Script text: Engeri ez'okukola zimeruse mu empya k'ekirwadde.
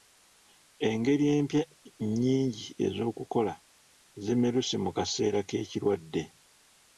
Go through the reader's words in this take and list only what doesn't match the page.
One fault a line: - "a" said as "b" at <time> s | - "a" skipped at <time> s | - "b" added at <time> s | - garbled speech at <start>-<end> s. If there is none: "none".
- "empya nnyingi" added at 1.4 s
- "empya" said as "kaseera" at 5.0 s